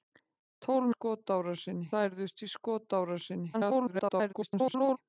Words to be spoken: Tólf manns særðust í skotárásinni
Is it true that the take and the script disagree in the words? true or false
true